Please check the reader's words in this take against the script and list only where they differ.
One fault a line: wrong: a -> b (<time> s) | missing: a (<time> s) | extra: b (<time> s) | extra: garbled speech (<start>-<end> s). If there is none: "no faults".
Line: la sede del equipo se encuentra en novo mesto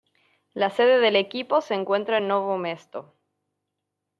no faults